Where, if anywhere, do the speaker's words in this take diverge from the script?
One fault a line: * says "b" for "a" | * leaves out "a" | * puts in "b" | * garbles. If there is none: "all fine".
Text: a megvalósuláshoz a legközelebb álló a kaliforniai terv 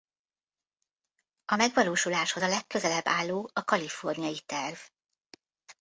all fine